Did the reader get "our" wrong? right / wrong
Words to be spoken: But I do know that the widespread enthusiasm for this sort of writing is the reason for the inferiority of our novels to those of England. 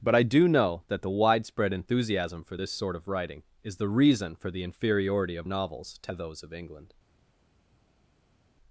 wrong